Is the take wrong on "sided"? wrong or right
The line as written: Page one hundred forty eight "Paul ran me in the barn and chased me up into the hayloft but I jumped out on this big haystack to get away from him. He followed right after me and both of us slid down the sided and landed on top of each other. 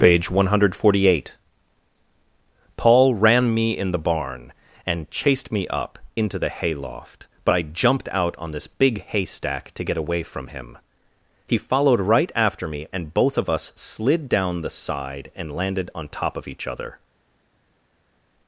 wrong